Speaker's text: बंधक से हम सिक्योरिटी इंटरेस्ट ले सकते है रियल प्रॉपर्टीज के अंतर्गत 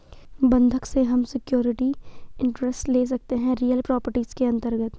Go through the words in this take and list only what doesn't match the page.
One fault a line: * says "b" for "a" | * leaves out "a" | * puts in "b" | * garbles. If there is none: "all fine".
all fine